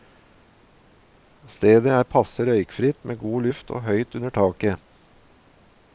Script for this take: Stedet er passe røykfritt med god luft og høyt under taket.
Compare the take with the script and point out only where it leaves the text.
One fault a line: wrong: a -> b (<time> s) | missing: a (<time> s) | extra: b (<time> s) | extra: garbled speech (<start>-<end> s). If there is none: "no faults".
no faults